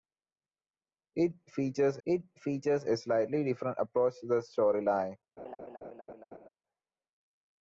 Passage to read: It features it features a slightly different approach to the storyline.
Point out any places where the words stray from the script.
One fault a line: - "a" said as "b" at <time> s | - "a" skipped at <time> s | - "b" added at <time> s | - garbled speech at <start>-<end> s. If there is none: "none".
none